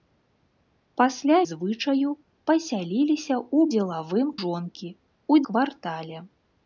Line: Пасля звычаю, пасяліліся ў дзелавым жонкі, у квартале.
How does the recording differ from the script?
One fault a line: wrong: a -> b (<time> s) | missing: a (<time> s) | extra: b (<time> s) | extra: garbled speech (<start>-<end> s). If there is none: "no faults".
no faults